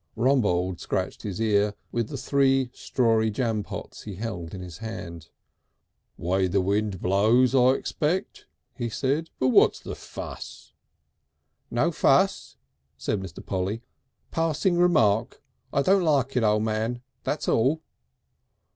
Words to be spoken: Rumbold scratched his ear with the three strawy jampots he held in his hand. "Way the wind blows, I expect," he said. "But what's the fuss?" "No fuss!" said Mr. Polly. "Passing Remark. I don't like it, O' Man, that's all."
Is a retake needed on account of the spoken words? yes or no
no